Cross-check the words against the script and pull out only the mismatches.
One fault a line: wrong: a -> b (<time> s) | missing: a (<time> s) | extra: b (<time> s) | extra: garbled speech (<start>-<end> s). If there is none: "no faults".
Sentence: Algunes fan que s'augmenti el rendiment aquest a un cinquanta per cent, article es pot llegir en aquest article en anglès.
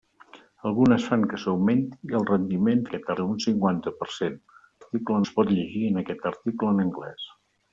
no faults